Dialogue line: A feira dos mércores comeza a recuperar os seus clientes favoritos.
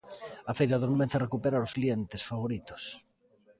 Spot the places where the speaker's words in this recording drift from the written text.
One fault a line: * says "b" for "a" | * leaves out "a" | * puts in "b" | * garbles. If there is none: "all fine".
* leaves out "mércores"
* leaves out "seus"